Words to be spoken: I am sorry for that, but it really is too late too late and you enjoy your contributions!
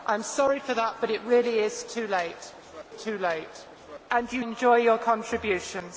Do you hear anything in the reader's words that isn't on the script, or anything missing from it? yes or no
no